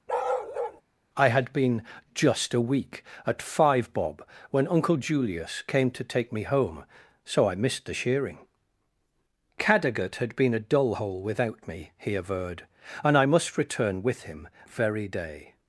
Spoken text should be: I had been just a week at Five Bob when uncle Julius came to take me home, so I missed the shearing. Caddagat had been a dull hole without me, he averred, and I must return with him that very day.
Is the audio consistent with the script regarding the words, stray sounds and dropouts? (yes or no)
no